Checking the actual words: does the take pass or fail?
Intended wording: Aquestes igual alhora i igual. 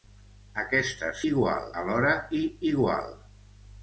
pass